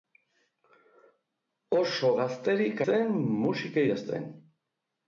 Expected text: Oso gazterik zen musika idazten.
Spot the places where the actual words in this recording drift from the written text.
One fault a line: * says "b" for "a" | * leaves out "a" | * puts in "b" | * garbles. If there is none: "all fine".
all fine